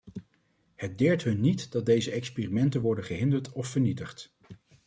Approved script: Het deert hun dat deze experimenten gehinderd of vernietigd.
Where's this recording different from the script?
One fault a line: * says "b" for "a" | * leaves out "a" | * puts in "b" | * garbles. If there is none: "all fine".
* puts in "niet"
* puts in "worden"